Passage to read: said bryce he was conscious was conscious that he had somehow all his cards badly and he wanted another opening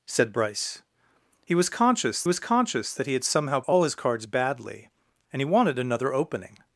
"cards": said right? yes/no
yes